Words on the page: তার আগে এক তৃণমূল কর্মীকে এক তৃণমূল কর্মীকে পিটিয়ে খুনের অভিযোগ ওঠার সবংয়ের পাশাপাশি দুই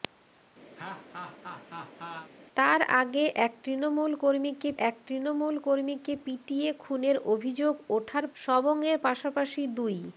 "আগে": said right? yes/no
yes